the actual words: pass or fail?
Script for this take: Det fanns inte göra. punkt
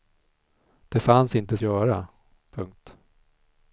pass